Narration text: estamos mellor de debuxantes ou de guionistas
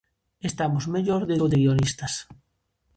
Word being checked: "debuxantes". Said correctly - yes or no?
no